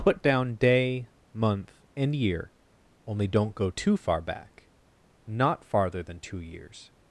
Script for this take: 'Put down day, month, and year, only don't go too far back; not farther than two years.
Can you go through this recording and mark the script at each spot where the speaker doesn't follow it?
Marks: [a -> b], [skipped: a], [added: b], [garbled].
'Put down day, month, and year, only don't go too far back; not farther than two years.